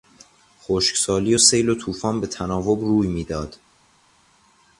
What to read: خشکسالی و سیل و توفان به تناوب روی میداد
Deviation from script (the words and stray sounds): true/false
false